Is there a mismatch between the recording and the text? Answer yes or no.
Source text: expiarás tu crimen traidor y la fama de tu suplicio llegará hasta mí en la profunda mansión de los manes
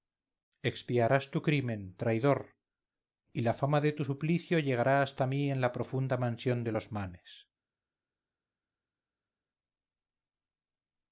no